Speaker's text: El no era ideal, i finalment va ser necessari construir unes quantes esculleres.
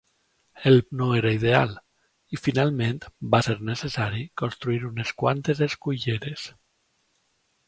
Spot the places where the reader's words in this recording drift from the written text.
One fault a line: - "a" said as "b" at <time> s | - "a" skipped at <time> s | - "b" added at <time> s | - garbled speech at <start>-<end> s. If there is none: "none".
none